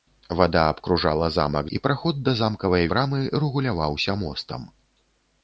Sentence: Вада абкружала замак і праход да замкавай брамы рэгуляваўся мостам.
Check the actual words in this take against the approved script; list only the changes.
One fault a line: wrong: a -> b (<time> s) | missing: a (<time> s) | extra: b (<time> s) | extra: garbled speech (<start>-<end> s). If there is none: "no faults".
no faults